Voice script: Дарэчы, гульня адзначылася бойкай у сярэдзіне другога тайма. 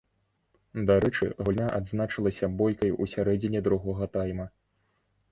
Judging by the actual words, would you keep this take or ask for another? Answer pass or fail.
pass